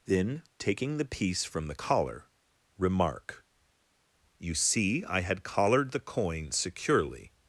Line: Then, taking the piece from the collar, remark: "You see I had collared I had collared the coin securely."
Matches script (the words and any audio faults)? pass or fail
fail